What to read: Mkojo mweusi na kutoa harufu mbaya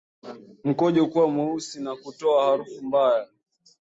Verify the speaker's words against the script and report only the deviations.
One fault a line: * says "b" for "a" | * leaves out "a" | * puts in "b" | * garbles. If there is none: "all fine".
* puts in "kuwa"